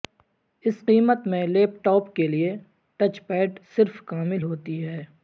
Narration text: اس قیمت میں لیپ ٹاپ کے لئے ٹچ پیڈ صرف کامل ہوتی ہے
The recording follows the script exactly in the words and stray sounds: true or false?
true